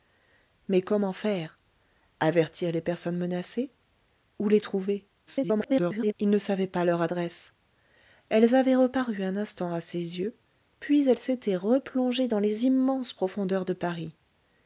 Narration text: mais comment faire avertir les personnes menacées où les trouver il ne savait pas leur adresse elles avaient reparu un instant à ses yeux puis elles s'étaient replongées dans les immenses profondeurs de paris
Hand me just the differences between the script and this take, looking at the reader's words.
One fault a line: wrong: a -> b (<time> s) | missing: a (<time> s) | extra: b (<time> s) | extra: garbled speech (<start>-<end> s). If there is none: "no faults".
extra: garbled speech (5.3-6.1 s)